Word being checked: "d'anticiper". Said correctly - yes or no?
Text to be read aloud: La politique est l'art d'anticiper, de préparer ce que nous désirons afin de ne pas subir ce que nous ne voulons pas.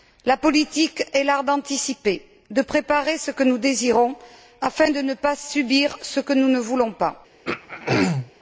yes